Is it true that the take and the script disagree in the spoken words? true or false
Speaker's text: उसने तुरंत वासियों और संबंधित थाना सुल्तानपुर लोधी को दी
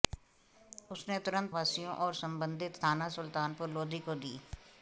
false